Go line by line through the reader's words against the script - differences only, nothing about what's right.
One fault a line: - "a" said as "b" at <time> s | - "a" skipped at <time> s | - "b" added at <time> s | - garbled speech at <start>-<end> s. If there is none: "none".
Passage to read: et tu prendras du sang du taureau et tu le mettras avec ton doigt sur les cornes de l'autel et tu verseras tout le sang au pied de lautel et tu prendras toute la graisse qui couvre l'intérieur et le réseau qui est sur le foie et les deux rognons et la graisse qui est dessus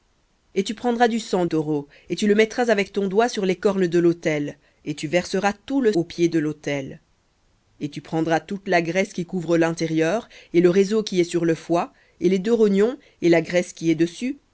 - "du" skipped at 1.4 s
- "sang" skipped at 5.9 s